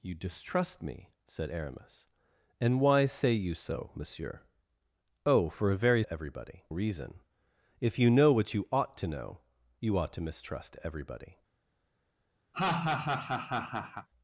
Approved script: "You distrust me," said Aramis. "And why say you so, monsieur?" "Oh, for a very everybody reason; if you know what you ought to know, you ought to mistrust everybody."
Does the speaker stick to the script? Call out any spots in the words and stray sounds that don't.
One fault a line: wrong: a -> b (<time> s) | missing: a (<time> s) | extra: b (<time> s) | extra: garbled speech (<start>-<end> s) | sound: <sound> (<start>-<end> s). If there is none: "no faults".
sound: laugh (12.5-14.1 s)